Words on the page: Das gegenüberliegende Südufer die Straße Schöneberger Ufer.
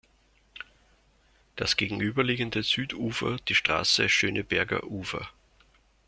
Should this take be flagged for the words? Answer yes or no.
no